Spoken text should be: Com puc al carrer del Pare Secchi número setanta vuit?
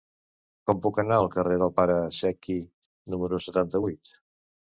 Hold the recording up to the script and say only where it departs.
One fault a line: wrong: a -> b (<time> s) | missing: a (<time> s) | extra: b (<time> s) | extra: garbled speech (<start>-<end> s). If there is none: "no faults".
extra: anar (1.0 s)